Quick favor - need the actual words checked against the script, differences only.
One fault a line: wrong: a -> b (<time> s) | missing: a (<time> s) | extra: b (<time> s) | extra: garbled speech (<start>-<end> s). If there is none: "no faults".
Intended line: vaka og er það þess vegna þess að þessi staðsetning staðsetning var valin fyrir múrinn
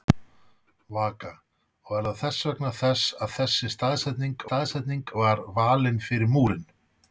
no faults